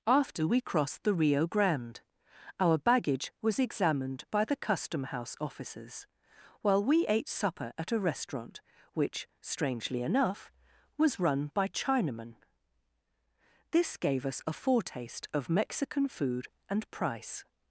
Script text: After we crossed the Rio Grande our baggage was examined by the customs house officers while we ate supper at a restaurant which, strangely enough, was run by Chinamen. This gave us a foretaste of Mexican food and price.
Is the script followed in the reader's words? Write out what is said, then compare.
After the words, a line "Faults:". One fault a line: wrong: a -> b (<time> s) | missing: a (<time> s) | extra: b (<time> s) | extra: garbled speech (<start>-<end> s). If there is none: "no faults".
After we crossed the Rio Grande our baggage was examined by the custom house officers while we ate supper at a restaurant which, strangely enough, was run by Chinamen. This gave us a foretaste of Mexican food and price.
Faults:
wrong: customs -> custom (4.5 s)